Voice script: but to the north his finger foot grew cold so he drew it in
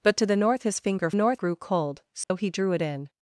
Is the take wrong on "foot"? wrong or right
wrong